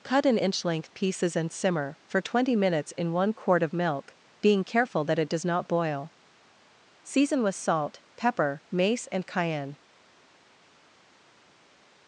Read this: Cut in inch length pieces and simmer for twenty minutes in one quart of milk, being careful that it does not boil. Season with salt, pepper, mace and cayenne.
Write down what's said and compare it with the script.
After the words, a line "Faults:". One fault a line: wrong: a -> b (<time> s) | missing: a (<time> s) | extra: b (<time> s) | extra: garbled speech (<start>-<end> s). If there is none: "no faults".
Cut in inch length pieces and simmer for twenty minutes in one quart of milk, being careful that it does not boil. Season with salt, pepper, mace and cayenne.
Faults:
no faults